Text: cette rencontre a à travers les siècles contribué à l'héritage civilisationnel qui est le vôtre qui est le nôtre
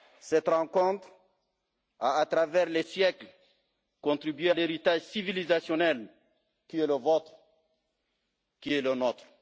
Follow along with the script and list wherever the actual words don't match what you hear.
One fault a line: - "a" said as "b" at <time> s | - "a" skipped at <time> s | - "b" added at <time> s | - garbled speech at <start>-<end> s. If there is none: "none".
- "à" skipped at 4.5 s